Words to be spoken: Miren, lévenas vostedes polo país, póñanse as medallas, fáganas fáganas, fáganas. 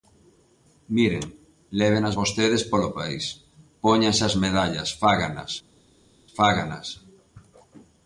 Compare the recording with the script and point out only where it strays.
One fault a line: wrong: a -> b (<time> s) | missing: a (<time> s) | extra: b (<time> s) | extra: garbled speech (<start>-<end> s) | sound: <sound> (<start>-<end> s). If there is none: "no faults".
missing: fáganas (6.9 s)